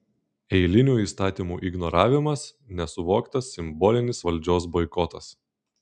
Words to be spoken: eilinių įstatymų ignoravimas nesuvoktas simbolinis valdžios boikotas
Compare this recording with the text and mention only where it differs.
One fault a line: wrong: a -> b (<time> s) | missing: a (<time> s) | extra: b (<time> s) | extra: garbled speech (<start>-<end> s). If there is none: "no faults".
no faults